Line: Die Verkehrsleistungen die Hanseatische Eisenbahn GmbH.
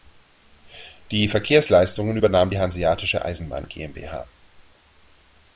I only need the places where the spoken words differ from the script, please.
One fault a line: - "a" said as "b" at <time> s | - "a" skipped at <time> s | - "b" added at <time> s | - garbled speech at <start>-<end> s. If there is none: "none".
- "übernahm" added at 2.1 s